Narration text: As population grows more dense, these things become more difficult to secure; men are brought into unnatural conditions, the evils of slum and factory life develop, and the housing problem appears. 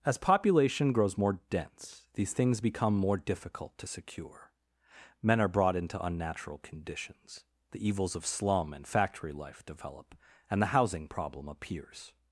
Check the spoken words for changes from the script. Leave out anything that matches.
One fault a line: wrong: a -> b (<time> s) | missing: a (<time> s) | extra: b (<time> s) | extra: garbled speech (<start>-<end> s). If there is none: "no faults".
no faults